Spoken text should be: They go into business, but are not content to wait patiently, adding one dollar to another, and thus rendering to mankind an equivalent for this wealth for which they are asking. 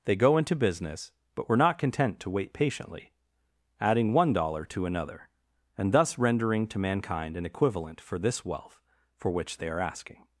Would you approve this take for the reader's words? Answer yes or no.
no